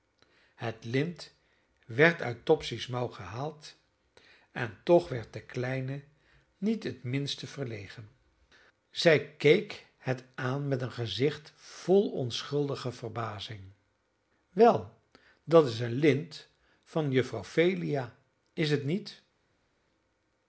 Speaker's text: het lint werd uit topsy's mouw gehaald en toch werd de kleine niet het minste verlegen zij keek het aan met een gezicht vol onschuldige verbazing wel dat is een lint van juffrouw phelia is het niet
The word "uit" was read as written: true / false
true